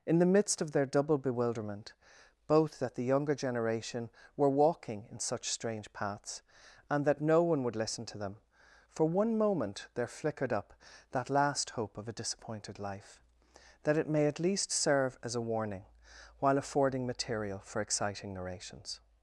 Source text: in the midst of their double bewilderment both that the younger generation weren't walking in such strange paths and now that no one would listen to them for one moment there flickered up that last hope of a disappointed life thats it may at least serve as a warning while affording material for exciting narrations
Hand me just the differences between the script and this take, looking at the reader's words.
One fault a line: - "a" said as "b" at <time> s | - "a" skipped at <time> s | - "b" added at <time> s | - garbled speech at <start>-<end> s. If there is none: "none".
- "weren't" said as "were" at 4.3 s
- "now" skipped at 7.0 s
- "thats" said as "that" at 13.8 s